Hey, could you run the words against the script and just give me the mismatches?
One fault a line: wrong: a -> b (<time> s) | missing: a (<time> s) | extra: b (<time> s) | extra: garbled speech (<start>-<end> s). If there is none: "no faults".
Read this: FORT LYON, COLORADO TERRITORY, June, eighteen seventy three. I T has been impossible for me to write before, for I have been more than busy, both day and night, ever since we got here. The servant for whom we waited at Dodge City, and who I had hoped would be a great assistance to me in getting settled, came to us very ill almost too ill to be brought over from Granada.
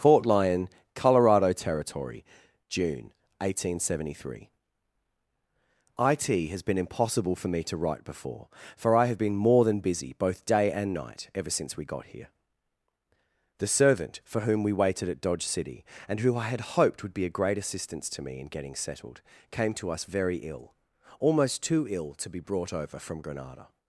no faults